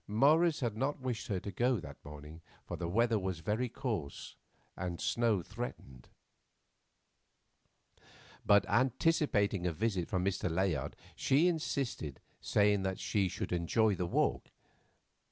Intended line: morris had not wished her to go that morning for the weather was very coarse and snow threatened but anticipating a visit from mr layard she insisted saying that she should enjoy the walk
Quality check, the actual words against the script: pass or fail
pass